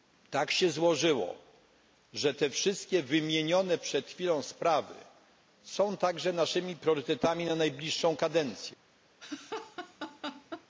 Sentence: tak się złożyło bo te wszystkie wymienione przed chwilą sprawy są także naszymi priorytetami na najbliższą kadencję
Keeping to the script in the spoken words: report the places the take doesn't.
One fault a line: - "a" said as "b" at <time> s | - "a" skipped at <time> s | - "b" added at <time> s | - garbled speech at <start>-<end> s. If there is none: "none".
- "bo" said as "że" at 2.1 s